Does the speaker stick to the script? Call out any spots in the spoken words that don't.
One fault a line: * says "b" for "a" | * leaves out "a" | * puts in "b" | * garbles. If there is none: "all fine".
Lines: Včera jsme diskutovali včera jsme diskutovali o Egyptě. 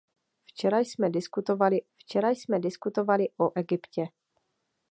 all fine